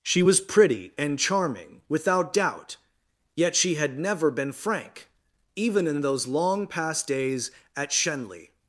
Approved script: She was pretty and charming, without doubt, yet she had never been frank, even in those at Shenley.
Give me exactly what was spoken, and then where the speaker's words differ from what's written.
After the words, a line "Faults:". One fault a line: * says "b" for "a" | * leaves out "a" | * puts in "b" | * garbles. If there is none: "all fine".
She was pretty and charming, without doubt, yet she had never been frank, even in those long past days at Shenley.
Faults:
* puts in "long past days"